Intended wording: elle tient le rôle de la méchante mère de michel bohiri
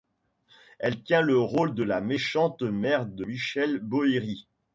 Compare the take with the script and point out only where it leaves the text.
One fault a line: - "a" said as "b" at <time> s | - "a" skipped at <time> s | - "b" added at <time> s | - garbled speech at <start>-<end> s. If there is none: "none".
none